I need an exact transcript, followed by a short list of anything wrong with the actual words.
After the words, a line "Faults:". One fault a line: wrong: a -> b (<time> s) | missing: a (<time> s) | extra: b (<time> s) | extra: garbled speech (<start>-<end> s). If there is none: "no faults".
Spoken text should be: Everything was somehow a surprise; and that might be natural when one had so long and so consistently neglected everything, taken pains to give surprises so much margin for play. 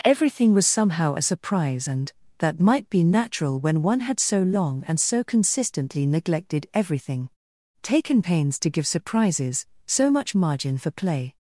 Everything was somehow a surprise; and that might be natural when one had so long and so consistently neglected everything, taken pains to give surprises so much margin for play.
Faults:
no faults